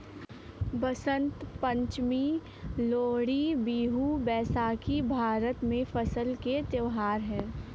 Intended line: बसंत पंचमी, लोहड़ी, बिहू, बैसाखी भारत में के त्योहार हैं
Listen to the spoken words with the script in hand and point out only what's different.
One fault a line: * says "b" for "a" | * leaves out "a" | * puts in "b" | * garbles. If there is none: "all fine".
* puts in "फसल"